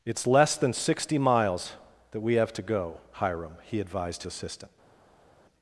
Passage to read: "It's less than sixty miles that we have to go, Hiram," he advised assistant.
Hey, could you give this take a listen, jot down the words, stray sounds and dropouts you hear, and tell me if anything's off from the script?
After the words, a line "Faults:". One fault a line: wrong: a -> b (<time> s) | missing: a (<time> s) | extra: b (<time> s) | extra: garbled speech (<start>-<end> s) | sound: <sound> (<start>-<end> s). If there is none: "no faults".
"It's less than sixty miles that we have to go, Hiram," he advised assistant.
Faults:
no faults